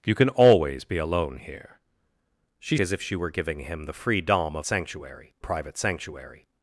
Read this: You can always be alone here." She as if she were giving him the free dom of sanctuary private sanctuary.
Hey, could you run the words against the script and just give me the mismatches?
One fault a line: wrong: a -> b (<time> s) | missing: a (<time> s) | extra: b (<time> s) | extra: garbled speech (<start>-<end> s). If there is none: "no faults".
no faults